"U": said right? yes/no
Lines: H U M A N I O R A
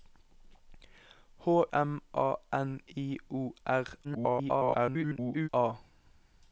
no